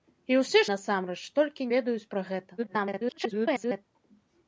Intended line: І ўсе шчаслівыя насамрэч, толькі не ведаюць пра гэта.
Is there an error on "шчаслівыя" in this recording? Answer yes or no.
yes